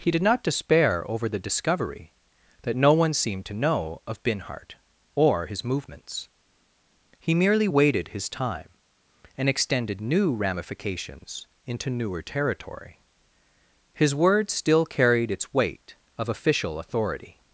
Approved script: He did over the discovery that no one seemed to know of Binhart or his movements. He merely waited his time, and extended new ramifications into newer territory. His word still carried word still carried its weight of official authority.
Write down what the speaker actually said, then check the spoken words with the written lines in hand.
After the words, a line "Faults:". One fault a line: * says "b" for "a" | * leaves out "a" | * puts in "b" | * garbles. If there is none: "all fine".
He did not despair over the discovery that no one seemed to know of Binhart or his movements. He merely waited his time, and extended new ramifications into newer territory. His word still carried its weight of official authority.
Faults:
* puts in "not despair"
* leaves out "word still carried"